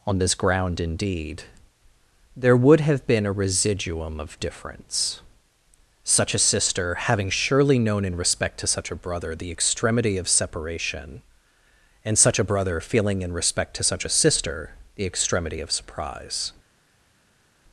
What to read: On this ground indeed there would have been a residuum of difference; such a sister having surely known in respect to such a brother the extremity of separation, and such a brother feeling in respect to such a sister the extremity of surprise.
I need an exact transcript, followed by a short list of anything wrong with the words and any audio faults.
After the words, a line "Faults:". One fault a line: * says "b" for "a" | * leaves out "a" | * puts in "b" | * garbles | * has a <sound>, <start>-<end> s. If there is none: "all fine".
On this ground indeed there would have been a residuum of difference; such a sister having surely known in respect to such a brother the extremity of separation, and such a brother feeling in respect to such a sister the extremity of surprise.
Faults:
all fine